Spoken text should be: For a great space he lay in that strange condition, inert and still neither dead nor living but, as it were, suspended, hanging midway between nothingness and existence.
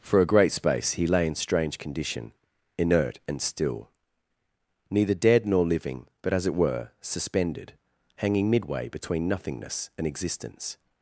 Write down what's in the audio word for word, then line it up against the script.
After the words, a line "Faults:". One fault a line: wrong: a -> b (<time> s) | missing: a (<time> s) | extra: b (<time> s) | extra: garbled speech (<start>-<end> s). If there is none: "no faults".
For a great space he lay in strange condition, inert and still neither dead nor living but, as it were, suspended, hanging midway between nothingness and existence.
Faults:
missing: that (1.4 s)